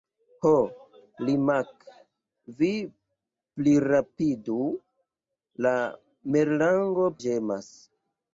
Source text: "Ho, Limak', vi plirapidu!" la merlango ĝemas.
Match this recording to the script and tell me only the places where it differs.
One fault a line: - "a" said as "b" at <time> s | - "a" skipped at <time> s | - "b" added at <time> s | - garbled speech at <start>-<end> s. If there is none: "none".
none